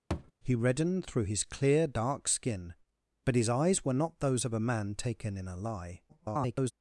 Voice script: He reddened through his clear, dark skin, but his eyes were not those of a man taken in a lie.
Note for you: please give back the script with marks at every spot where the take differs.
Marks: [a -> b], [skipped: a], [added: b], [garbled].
He reddened through his clear, dark skin, but his eyes were not those of a man taken in a lie. [garbled]